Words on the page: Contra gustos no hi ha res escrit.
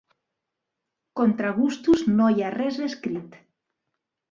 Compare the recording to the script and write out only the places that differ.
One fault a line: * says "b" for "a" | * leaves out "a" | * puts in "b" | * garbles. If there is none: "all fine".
all fine